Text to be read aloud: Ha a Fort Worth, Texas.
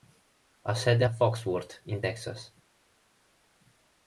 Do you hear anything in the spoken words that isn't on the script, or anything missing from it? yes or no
yes